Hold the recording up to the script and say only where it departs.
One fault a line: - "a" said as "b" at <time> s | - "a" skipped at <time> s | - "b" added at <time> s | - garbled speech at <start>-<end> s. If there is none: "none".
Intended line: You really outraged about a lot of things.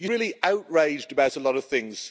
none